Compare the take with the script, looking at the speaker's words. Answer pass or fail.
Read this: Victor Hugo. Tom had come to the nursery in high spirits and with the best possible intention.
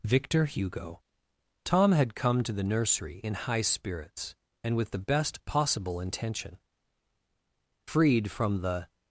fail